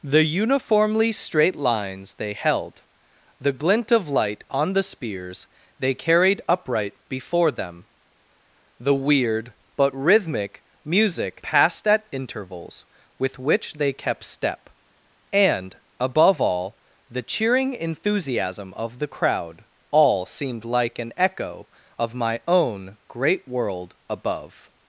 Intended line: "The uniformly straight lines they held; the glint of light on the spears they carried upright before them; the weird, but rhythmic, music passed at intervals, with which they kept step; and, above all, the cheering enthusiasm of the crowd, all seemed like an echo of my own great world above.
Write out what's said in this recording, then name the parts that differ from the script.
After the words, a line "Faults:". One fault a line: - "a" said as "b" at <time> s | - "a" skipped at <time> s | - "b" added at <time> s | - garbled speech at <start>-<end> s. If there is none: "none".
"The uniformly straight lines they held; the glint of light on the spears they carried upright before them; the weird, but rhythmic, music passed at intervals, with which they kept step; and, above all, the cheering enthusiasm of the crowd, all seemed like an echo of my own great world above.
Faults:
none